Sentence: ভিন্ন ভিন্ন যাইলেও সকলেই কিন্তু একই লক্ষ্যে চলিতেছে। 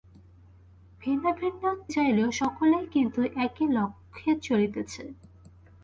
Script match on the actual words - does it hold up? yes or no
yes